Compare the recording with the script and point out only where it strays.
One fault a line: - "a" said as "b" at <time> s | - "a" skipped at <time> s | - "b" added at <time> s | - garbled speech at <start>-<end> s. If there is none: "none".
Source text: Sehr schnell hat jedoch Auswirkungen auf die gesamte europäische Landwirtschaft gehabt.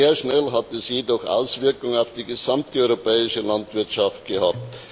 - "es" added at 0.7 s